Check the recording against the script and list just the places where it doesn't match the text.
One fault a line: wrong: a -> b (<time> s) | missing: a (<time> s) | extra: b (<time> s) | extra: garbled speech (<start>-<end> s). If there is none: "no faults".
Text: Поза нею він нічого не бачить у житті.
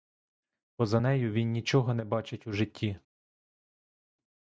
no faults